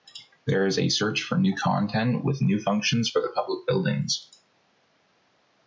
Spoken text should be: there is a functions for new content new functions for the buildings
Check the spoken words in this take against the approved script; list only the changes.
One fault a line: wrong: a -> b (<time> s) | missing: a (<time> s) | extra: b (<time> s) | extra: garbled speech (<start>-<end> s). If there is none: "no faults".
wrong: functions -> search (0.9 s)
extra: with (2.2 s)
extra: public (3.4 s)